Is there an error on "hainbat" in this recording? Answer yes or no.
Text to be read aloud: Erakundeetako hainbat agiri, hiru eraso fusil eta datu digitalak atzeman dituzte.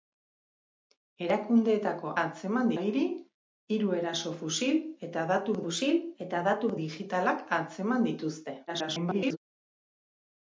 yes